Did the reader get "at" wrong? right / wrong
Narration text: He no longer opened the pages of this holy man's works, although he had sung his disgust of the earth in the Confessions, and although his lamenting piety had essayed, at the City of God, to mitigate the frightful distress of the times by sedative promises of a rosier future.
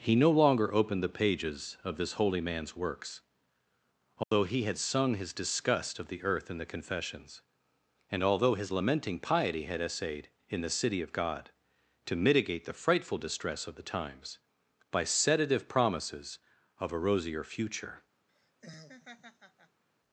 wrong